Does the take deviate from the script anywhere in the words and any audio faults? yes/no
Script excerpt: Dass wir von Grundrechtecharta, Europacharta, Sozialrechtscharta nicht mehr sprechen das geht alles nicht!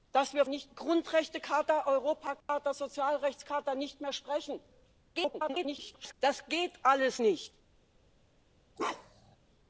yes